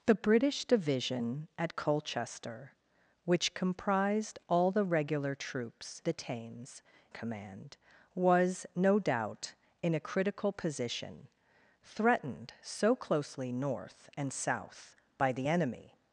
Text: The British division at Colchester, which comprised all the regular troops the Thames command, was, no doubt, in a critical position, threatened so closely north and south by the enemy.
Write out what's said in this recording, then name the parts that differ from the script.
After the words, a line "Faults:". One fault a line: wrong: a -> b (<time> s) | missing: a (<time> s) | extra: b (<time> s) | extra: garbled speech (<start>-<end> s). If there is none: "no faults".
The British division at Colchester, which comprised all the regular troops the Thames command, was, no doubt, in a critical position, threatened so closely north and south by the enemy.
Faults:
no faults